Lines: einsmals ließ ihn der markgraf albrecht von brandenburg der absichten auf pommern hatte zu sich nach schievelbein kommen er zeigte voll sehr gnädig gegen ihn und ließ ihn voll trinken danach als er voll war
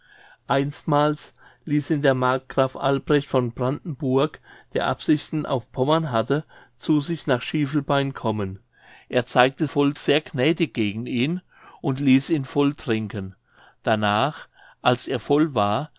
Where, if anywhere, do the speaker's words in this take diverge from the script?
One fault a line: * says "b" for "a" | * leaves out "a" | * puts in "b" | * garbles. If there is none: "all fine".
all fine